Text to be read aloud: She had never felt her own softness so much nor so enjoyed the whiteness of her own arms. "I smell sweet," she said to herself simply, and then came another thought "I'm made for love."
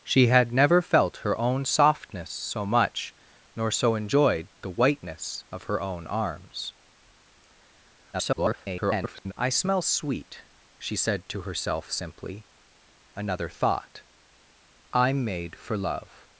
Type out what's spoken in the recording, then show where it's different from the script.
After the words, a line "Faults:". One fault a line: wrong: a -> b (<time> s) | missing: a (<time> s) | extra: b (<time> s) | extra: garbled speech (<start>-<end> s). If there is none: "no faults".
She had never felt her own softness so much nor so enjoyed the whiteness of her own arms. [garbled] "I smell sweet," she said to herself simply, another thought "I'm made for love."
Faults:
extra: garbled speech (8.1-9.3 s)
missing: and then came (12.5 s)